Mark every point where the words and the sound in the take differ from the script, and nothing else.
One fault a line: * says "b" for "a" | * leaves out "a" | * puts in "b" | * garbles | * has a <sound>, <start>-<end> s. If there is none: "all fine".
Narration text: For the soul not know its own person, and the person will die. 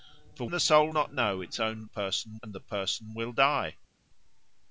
all fine